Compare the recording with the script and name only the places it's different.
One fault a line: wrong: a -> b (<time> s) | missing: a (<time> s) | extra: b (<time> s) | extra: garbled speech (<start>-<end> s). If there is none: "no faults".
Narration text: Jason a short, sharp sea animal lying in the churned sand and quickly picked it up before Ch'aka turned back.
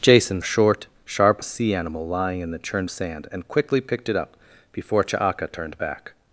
no faults